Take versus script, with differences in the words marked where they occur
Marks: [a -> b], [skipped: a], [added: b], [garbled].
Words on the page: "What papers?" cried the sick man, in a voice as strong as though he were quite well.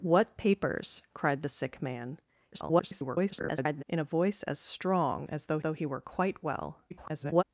"What papers?" cried the sick man, [garbled] in a voice as strong as though [added: though] he were quite well. [garbled]